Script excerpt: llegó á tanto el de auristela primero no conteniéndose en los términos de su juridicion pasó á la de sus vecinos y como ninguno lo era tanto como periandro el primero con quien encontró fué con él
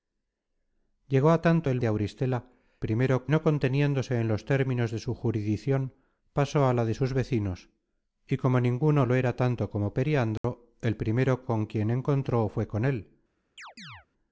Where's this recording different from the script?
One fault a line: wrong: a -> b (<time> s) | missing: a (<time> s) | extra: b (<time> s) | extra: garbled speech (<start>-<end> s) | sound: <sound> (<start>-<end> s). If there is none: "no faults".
sound: dropout (10.4-10.4 s)
sound: chirp (13.6-14.1 s)